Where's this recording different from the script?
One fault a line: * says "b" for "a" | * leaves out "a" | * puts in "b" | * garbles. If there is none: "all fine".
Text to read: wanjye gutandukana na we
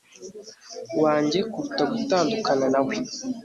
* puts in "kuruta"